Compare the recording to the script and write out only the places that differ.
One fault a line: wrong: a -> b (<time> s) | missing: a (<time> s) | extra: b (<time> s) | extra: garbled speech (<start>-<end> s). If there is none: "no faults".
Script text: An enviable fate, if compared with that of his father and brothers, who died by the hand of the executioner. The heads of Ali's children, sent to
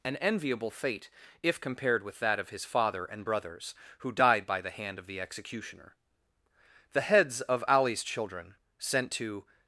no faults